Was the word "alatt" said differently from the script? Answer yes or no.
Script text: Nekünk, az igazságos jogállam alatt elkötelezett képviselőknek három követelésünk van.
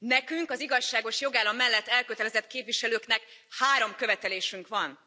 yes